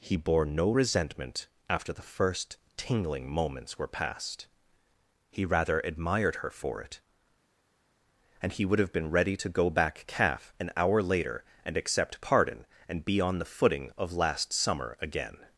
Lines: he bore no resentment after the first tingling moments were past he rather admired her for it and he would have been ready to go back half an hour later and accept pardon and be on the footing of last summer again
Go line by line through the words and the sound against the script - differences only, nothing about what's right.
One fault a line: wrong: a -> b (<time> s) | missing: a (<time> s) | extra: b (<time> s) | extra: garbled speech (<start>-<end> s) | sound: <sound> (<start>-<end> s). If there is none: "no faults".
wrong: half -> calf (10.1 s)